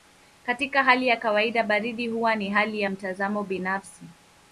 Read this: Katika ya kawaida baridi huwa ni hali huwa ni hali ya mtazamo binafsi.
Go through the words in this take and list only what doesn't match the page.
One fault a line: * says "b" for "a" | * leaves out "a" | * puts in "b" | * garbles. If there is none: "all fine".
* puts in "hali"
* leaves out "huwa ni hali"